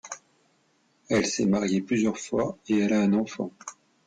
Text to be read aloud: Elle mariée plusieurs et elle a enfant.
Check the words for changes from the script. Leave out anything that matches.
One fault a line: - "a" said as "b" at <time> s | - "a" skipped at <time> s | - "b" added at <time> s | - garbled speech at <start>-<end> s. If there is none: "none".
- "s'est" added at 1.3 s
- "fois" added at 2.2 s
- "un" added at 3.0 s